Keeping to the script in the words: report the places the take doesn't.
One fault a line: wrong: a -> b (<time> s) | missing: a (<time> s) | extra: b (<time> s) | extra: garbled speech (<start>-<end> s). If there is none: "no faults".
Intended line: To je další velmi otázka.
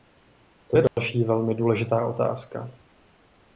extra: důležitá (1.5 s)